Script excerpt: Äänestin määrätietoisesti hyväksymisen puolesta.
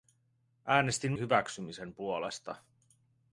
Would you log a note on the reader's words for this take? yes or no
yes